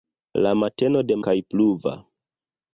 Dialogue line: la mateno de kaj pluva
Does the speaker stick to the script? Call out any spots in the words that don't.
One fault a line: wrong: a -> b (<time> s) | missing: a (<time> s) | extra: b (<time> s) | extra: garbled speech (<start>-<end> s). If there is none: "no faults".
no faults